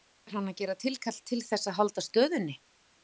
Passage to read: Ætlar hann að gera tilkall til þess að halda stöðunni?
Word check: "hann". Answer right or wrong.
right